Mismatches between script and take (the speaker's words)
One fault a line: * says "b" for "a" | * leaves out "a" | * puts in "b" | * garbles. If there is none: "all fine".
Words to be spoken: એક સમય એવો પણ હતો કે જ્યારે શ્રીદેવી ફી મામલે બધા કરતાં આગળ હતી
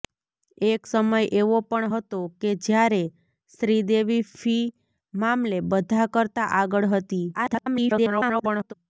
* garbles